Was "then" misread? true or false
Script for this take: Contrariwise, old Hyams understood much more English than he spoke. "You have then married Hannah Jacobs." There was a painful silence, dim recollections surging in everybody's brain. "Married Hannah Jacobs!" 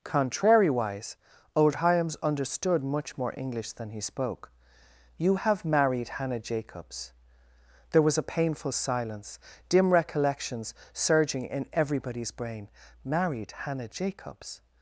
true